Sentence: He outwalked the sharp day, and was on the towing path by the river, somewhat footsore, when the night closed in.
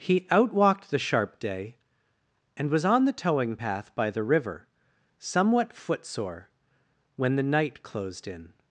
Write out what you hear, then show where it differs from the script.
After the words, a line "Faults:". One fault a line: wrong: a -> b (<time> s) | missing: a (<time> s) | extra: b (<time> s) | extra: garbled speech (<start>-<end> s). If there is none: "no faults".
He outwalked the sharp day, and was on the towing path by the river, somewhat footsore, when the night closed in.
Faults:
no faults